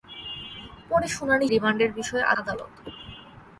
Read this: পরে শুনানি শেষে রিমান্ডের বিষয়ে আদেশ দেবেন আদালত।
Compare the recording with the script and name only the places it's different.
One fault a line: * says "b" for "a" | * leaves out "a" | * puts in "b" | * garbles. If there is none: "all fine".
* leaves out "শেষে"
* leaves out "আদেশ দেবেন"